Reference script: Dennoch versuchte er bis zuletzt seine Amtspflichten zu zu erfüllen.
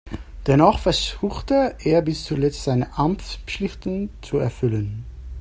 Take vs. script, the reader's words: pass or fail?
fail